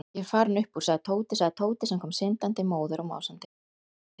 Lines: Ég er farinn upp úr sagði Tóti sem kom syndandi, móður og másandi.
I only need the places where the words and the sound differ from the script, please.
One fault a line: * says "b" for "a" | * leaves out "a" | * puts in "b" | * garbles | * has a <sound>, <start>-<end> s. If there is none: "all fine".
* puts in "sagði Tóti"